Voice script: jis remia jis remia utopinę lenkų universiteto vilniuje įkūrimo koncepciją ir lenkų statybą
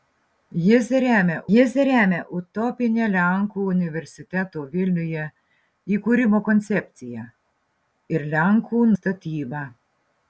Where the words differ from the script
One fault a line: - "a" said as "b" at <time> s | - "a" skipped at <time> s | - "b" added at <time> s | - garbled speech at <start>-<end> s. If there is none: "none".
none